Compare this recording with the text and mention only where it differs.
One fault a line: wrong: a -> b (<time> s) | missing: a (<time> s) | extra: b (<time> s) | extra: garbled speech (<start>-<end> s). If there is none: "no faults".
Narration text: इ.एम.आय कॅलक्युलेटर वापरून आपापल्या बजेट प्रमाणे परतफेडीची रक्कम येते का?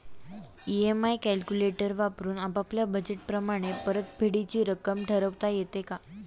extra: ठरवता (5.0 s)